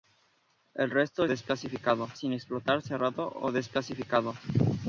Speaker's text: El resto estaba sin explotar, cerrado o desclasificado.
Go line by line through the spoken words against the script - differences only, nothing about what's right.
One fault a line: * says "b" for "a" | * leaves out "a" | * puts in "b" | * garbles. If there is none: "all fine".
* says "desclasificado" for "estaba"